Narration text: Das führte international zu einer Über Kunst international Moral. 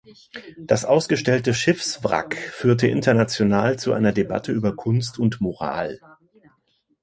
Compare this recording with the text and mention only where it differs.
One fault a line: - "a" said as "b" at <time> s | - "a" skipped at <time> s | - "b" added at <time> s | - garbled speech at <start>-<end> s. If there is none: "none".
- "ausgestellte Schiffswrack" added at 0.8 s
- "Debatte" added at 4.1 s
- "international" said as "und" at 5.2 s